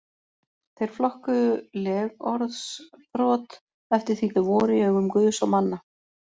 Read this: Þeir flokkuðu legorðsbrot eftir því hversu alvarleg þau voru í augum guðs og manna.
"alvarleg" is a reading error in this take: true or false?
true